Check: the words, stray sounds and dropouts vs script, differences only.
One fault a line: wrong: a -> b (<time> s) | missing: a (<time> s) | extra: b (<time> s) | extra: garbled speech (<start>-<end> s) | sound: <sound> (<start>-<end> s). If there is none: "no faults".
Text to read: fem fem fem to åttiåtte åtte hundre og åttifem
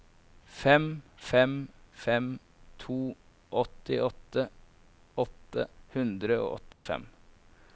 sound: dropout (6.7-6.9 s)